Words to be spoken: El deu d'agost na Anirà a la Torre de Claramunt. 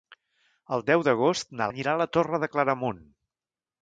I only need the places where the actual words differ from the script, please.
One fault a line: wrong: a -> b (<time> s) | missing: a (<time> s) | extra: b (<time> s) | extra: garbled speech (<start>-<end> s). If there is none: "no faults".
no faults